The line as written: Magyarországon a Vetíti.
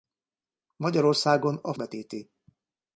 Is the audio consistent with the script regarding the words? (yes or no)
yes